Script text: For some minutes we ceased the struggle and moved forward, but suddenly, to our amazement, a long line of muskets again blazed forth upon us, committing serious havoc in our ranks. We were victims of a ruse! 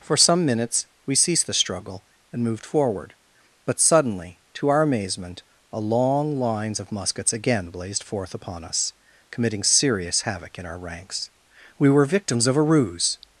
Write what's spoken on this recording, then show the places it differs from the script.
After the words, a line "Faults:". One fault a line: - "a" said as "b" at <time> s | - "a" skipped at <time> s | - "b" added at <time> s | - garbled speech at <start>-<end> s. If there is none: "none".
For some minutes we ceased the struggle and moved forward, but suddenly, to our amazement, a long lines of muskets again blazed forth upon us, committing serious havoc in our ranks. We were victims of a ruse!
Faults:
- "line" said as "lines" at 6.4 s